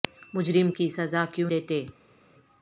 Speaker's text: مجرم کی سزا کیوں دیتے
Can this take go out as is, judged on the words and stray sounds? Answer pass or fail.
pass